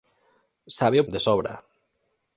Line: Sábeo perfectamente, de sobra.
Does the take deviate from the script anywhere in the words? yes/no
yes